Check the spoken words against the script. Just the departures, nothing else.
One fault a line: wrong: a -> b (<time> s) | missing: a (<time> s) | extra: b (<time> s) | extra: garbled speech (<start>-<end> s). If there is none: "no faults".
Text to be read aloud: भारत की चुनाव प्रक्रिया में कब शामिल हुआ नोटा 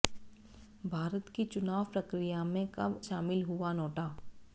no faults